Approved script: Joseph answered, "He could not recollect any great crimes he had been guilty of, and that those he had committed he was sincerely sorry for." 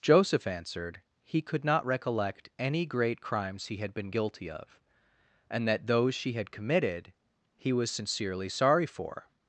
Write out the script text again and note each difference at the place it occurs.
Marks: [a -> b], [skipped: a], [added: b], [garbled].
Joseph answered, "He could not recollect any great crimes he had been guilty of, and that those [he -> she] had committed he was sincerely sorry for."